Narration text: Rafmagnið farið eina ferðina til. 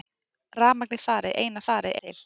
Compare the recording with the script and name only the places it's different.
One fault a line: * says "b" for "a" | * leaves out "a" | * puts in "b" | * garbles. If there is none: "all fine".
* says "farið" for "ferðina"